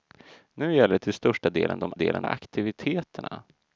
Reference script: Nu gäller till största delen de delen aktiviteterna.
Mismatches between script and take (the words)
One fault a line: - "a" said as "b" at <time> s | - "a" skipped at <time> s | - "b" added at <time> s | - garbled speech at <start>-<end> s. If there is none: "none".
none